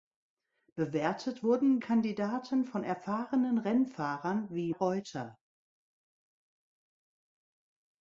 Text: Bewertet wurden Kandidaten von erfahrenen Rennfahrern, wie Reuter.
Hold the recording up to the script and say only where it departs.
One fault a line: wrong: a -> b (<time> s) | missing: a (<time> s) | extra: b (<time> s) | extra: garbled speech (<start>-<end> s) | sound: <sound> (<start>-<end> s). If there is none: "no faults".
no faults